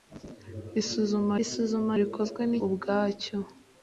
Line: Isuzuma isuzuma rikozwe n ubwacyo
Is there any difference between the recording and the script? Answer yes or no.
no